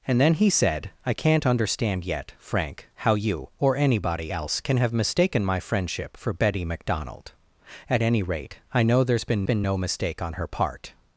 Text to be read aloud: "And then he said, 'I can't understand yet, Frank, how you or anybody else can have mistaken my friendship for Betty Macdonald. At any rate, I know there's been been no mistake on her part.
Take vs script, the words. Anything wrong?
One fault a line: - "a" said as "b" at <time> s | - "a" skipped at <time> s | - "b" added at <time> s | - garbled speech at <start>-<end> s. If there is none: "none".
none